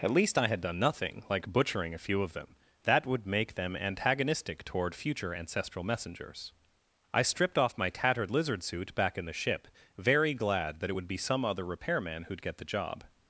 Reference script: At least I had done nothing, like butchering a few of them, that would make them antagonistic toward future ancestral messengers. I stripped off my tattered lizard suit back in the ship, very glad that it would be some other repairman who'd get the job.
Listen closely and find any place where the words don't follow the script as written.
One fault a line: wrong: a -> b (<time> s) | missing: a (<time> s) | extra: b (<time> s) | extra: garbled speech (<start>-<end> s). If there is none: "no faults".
no faults